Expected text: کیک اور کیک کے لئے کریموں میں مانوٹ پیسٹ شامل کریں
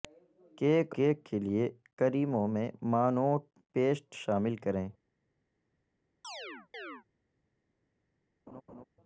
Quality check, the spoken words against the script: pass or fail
fail